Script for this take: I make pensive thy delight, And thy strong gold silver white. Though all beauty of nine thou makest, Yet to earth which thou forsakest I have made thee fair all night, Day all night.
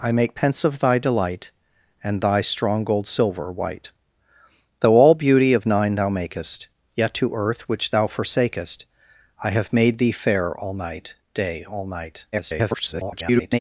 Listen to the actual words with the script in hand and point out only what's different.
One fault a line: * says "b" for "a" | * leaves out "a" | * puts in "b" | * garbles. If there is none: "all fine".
* garbles